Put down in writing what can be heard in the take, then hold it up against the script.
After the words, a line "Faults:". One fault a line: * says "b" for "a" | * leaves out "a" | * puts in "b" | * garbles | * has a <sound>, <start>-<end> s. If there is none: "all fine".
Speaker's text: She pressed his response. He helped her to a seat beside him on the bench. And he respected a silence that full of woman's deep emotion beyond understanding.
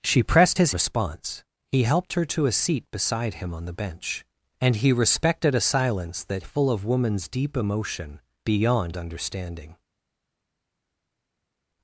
She pressed his response. He helped her to a seat beside him on the bench. And he respected a silence that full of woman's deep emotion beyond understanding.
Faults:
all fine